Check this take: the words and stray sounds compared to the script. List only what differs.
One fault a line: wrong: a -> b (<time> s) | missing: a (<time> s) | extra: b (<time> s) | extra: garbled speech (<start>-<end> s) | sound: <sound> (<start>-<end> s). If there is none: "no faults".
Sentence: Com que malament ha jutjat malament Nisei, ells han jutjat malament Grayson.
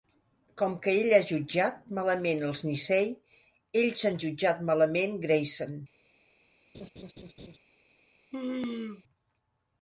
wrong: malament -> ell (1.0 s)
extra: els (2.5 s)
sound: laugh (6.7-7.6 s)
sound: sneeze (8.3-9.0 s)